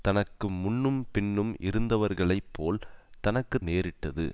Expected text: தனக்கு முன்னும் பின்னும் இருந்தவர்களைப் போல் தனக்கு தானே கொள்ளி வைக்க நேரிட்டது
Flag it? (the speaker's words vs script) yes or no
yes